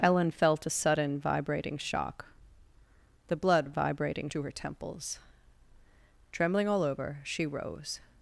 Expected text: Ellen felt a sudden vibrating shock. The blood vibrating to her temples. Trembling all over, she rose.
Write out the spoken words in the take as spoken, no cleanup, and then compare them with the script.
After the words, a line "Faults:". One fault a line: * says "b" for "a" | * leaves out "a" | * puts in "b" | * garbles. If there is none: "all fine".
Ellen felt a sudden vibrating shock. The blood vibrating to her temples. Trembling all over, she rose.
Faults:
all fine